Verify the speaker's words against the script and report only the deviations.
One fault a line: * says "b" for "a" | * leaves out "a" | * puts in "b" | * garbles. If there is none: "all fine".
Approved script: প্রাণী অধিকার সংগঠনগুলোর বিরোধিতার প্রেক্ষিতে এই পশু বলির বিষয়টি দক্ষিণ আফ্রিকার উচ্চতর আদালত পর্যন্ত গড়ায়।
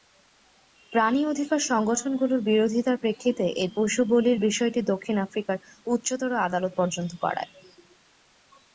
all fine